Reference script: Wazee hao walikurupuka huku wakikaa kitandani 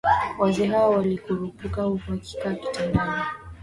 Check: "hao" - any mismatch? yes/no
no